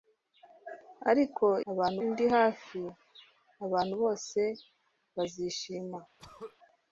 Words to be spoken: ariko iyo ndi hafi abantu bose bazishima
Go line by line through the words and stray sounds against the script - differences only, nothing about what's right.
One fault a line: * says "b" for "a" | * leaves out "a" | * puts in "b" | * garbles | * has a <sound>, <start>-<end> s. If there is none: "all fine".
* says "abantu" for "iyo"
* has a throat clearing, 6.2-6.6 s